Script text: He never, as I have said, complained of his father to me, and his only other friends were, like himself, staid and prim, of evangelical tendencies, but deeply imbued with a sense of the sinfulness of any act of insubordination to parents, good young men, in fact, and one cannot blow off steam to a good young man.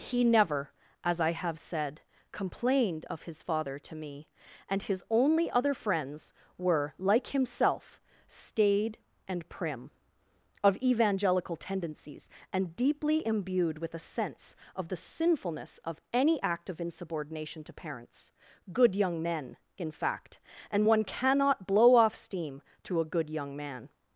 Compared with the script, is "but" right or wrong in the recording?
wrong